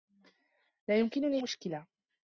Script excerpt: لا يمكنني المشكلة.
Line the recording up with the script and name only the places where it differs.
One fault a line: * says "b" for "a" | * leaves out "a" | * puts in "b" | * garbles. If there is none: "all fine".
all fine